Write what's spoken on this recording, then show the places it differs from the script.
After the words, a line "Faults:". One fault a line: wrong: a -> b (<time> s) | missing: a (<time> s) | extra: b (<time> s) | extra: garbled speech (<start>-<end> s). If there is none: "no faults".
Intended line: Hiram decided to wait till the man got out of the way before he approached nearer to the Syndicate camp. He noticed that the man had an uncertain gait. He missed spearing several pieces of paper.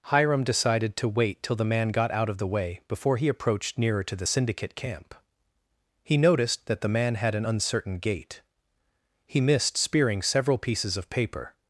Hiram decided to wait till the man got out of the way before he approached nearer to the Syndicate camp. He noticed that the man had an uncertain gait. He missed spearing several pieces of paper.
Faults:
no faults